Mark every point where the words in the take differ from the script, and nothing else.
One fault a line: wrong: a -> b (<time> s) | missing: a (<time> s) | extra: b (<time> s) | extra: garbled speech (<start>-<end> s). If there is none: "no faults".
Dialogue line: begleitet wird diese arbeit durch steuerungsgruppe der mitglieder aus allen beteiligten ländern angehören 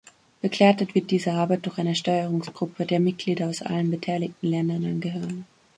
extra: eine (1.8 s)